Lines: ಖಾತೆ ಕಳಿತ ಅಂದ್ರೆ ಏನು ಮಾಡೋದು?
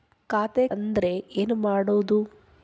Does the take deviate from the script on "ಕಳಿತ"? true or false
true